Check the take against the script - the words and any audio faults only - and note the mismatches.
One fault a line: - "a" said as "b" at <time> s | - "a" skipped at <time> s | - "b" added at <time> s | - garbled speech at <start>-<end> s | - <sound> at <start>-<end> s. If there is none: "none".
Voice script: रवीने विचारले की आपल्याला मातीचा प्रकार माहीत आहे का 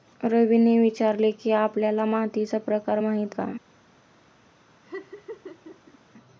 - "आहे" skipped at 3.4 s
- laugh at 4.8-6.0 s